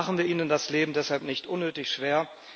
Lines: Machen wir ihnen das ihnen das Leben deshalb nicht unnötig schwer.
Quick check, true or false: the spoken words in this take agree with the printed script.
false